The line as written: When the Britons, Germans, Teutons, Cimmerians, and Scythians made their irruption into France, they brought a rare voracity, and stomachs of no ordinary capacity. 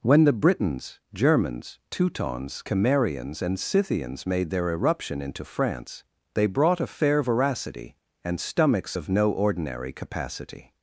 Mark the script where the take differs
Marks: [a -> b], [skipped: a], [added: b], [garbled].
When the Britons, Germans, Teutons, Cimmerians, and Scythians made their irruption into France, they brought a [rare -> fair] voracity, and stomachs of no ordinary capacity.